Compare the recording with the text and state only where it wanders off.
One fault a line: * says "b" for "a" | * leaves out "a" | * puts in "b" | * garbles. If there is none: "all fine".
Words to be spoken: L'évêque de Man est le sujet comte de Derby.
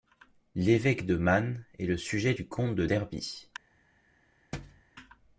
* puts in "du"